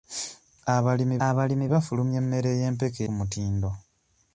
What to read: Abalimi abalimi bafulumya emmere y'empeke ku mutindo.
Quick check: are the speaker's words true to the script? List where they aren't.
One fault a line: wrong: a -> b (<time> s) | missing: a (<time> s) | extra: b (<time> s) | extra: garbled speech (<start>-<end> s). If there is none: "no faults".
no faults